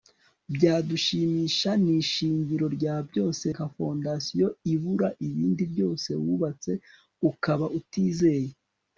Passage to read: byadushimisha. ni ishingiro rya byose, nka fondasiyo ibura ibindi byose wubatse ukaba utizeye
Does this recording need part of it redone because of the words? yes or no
no